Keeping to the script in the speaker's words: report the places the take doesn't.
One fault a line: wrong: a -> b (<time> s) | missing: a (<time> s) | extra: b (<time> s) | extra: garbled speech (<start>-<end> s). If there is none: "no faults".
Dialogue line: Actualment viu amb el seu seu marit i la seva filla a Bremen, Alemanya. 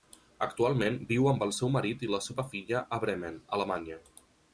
missing: seu (1.7 s)